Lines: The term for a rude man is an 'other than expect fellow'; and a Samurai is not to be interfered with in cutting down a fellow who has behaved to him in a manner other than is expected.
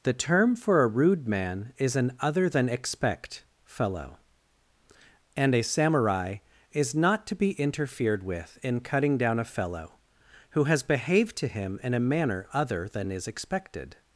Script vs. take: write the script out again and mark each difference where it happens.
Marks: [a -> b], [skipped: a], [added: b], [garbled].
The term for a rude man is an 'other than expect fellow'; and a Samurai is not to be interfered with in cutting down a fellow who has behaved to him in a manner other than is expected.